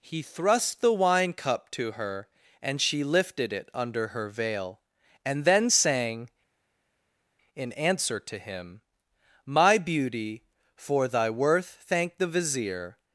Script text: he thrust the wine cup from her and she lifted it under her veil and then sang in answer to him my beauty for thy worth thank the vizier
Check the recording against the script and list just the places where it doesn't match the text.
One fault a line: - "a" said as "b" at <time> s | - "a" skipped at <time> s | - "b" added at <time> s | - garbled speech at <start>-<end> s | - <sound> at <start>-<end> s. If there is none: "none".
- "from" said as "to" at 1.7 s